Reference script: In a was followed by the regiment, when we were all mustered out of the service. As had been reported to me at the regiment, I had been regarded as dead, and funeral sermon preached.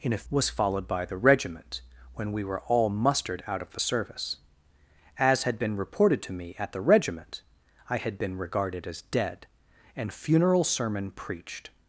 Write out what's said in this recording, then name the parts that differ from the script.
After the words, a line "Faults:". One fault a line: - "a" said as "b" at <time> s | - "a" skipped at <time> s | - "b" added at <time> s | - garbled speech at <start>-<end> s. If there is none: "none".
In a was followed by the regiment, when we were all mustered out of the service. As had been reported to me at the regiment, I had been regarded as dead, and funeral sermon preached.
Faults:
none